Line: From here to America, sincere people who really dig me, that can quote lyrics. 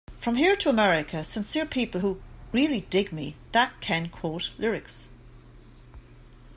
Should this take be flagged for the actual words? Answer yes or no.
no